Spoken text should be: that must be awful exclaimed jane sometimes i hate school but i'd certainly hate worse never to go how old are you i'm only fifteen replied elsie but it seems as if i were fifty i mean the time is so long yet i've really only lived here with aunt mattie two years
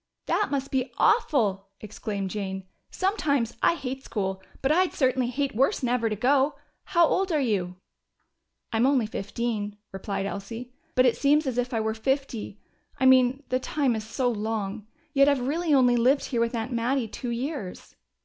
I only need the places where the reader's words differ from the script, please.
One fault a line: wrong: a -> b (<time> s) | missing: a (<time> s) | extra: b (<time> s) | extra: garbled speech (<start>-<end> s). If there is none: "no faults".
no faults